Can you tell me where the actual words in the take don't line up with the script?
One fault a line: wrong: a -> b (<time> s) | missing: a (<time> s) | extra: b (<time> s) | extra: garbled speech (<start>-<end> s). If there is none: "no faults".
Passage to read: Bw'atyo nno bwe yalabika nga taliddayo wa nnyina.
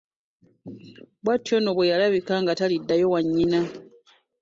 no faults